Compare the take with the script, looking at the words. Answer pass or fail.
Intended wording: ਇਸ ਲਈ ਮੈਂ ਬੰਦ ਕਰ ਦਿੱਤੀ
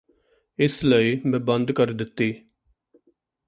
pass